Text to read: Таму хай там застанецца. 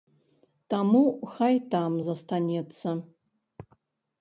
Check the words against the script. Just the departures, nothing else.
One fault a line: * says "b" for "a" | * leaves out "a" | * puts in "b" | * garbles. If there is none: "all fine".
all fine